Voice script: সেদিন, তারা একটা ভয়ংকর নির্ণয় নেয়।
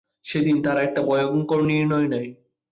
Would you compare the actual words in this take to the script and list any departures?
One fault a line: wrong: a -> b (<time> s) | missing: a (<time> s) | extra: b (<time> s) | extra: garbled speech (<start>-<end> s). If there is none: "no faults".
no faults